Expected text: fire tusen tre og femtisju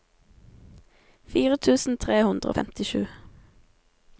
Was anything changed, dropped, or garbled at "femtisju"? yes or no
no